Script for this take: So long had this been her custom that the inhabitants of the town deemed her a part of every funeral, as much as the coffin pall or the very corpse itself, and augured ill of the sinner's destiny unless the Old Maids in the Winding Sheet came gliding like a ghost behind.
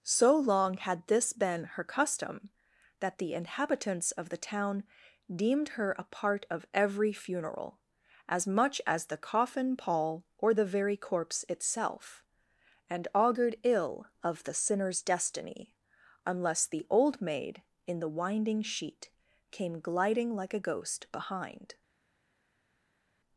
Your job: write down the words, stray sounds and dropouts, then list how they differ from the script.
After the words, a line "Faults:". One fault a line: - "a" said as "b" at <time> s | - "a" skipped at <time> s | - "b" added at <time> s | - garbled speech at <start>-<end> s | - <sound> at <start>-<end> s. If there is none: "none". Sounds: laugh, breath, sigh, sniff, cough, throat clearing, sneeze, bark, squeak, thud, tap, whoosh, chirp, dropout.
So long had this been her custom that the inhabitants of the town deemed her a part of every funeral, as much as the coffin pall or the very corpse itself, and augured ill of the sinner's destiny unless the Old Maid in the Winding Sheet came gliding like a ghost behind.
Faults:
- "Maids" said as "Maid" at 17.2 s